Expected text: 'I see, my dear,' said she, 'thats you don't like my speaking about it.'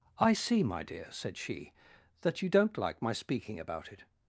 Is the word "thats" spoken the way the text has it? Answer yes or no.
no